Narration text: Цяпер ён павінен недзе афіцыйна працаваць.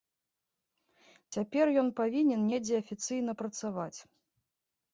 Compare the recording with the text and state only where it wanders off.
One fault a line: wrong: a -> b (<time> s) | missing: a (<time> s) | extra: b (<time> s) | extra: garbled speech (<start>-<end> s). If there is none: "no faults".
no faults